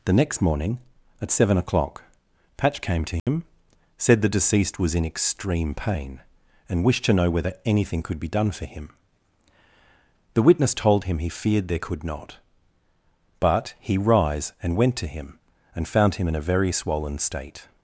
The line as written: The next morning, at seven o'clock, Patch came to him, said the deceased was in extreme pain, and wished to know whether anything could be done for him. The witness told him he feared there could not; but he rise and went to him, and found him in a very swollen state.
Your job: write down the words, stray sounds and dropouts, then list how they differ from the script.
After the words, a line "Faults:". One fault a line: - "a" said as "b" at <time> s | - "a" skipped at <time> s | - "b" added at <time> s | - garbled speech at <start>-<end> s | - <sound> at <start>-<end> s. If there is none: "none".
The next morning, at seven o'clock, Patch came to him, said the deceased was in extreme pain, and wished to know whether anything could be done for him. The witness told him he feared there could not; but he rise and went to him, and found him in a very swollen state.
Faults:
- dropout at 3.2-3.3 s